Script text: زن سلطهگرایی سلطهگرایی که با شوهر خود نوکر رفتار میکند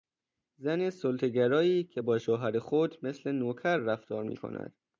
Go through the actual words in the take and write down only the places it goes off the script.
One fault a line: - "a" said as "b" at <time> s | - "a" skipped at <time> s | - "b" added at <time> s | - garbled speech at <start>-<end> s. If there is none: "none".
- "سلطهگرایی" skipped at 1.8 s
- "مثل" added at 3.0 s